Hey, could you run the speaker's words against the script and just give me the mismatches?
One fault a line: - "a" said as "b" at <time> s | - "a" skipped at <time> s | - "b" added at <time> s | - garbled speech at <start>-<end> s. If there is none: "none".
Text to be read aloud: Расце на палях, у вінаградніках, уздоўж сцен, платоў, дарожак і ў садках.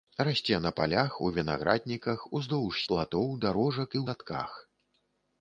- "сцен" skipped at 2.8 s
- "ў" skipped at 4.0 s